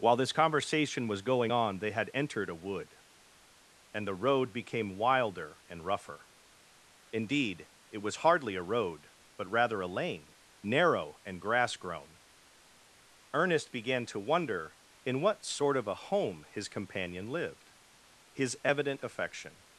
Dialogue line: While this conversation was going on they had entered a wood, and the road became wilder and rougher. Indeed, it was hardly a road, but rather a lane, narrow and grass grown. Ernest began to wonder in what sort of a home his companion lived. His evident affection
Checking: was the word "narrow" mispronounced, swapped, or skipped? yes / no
no